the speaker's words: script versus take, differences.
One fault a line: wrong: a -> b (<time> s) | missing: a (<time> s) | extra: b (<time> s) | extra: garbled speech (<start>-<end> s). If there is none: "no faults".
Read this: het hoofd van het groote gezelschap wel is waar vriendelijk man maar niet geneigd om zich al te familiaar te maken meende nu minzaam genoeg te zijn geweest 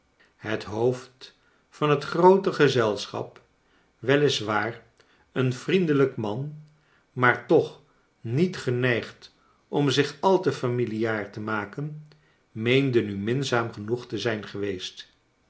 extra: een (5.3 s)
extra: toch (7.4 s)